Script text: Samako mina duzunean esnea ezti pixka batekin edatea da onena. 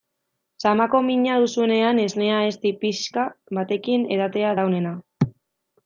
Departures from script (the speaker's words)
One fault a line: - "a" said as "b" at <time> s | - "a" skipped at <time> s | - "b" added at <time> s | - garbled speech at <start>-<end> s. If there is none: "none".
none